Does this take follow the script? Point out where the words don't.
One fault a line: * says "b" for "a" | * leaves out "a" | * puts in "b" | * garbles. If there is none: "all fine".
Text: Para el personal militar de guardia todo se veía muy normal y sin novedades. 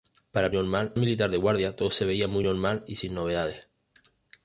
* says "normal" for "personal"